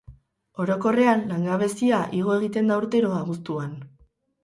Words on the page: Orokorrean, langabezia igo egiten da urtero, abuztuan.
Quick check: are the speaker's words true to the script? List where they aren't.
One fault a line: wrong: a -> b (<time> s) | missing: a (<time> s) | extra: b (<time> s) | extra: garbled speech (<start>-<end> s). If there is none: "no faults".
no faults